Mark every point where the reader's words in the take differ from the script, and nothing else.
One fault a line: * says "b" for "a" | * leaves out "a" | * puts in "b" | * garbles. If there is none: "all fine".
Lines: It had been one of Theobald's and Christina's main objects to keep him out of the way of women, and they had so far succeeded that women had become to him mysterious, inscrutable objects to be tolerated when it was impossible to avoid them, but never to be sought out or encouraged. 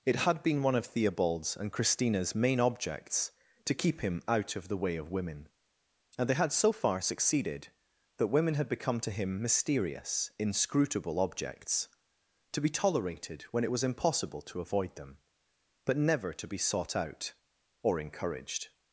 all fine